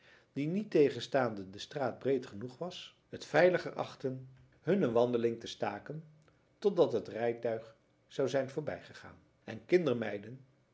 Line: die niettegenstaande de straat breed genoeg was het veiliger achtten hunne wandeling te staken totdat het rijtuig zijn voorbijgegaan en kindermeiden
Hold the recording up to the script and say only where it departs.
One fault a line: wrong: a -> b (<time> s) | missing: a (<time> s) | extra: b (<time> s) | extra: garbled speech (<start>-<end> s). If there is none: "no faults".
extra: zou (8.1 s)